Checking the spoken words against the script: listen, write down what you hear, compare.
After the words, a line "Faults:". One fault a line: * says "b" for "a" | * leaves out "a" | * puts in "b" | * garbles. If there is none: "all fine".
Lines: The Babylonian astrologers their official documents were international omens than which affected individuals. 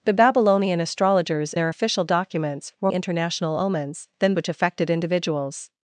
The Babylonian astrologers their official documents were international omens than which affected individuals.
Faults:
all fine